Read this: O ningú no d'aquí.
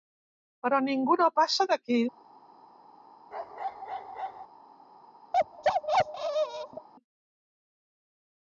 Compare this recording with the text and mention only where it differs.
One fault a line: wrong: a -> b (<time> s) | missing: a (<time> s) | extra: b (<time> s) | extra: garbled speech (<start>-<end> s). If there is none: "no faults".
wrong: O -> Però (0.7 s)
extra: passa (1.4 s)